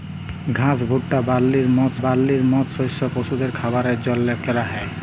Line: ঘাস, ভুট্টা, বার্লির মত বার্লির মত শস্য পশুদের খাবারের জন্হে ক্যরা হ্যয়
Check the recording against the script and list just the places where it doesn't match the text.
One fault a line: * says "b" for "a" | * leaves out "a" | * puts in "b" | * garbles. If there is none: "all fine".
all fine